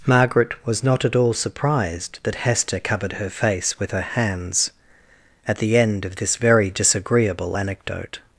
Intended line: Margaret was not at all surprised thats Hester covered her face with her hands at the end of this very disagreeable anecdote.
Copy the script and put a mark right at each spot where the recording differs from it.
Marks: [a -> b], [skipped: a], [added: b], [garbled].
Margaret was not at all surprised [thats -> that] Hester covered her face with her hands at the end of this very disagreeable anecdote.